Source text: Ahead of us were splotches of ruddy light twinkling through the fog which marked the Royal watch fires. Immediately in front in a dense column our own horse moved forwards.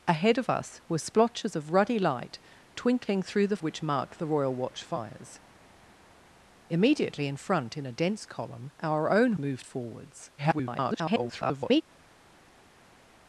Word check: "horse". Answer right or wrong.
wrong